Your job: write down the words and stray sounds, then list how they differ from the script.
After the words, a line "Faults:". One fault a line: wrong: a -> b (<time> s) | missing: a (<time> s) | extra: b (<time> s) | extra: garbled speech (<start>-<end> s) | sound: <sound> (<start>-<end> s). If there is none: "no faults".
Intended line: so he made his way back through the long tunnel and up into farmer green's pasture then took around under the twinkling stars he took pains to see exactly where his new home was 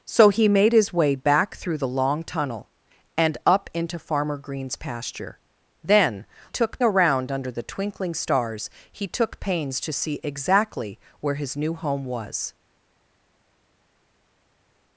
so he made his way back through the long tunnel and up into farmer green's pasture then took around under the twinkling stars he took pains to see exactly where his new home was
Faults:
no faults